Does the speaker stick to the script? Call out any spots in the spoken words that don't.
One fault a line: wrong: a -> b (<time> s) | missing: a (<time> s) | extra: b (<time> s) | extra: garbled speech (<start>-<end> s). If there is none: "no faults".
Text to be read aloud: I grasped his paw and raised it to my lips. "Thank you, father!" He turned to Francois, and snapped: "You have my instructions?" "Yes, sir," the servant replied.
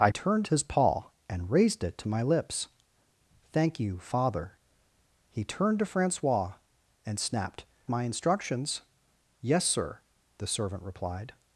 wrong: grasped -> turned (0.1 s)
missing: You have (7.6 s)